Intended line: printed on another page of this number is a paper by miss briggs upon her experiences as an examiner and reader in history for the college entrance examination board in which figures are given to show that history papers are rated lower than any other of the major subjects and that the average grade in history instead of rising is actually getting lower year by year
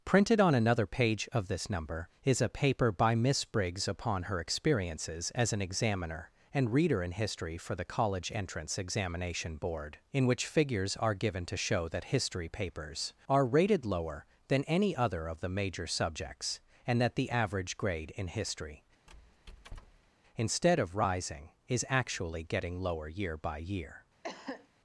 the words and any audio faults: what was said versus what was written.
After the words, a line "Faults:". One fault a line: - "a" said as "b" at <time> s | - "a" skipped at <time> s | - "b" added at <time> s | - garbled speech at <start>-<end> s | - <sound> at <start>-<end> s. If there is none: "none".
printed on another page of this number is a paper by miss briggs upon her experiences as an examiner and reader in history for the college entrance examination board in which figures are given to show that history papers are rated lower than any other of the major subjects and that the average grade in history instead of rising is actually getting lower year by year
Faults:
- squeak at 19.1-20.1 s
- cough at 24.2-24.7 s